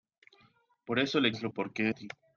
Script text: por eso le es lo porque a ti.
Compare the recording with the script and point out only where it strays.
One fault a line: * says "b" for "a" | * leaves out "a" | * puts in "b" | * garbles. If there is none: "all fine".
all fine